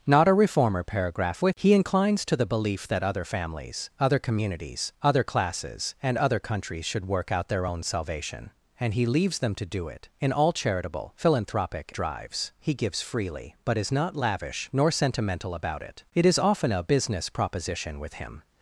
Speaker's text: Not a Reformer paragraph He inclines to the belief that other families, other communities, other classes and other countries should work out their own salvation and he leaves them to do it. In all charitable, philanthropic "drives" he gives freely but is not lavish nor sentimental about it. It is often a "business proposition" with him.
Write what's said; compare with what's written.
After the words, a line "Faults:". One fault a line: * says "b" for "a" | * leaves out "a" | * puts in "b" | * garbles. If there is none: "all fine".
Not a Reformer paragraph He inclines to the belief that other families, other communities, other classes and other countries should work out their own salvation and he leaves them to do it. In all charitable, philanthropic "drives" he gives freely but is not lavish nor sentimental about it. It is often a "business proposition" with him.
Faults:
all fine